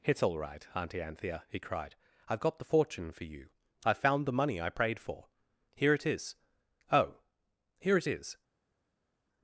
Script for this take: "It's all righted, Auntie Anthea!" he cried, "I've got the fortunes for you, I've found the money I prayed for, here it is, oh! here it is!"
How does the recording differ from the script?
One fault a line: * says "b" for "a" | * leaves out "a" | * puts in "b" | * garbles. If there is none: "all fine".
* says "right" for "righted"
* says "fortune" for "fortunes"